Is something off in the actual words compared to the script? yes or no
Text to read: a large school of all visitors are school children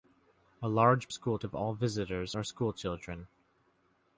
no